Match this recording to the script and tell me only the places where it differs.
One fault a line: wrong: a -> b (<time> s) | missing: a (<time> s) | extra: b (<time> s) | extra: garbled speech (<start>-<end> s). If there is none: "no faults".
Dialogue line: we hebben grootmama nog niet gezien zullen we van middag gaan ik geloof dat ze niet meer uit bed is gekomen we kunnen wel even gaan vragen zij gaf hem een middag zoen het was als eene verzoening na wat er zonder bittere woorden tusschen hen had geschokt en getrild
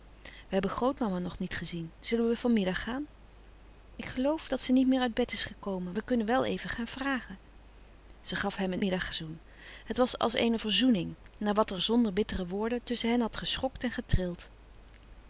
no faults